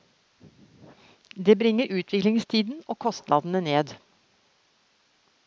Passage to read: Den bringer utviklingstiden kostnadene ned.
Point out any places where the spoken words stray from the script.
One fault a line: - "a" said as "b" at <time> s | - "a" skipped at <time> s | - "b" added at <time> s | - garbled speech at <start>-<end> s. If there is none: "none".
- "Den" said as "Det" at 1.4 s
- "og" added at 2.9 s